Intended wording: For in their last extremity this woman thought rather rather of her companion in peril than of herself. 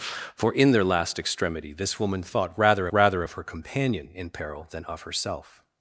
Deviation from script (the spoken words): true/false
false